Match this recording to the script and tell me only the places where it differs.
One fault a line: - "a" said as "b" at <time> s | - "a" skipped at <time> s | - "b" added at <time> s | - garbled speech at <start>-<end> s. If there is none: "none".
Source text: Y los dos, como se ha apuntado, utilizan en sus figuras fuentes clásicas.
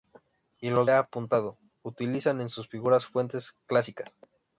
- "dos como se" skipped at 0.9 s